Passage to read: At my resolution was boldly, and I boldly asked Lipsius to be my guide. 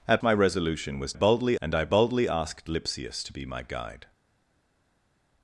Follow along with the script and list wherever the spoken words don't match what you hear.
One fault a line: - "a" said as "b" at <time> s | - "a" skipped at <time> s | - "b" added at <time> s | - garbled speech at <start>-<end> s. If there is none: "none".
none